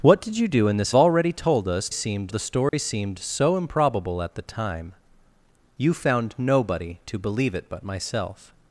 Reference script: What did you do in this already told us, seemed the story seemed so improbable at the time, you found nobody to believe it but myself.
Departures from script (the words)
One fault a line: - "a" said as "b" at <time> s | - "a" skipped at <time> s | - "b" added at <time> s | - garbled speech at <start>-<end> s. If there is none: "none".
none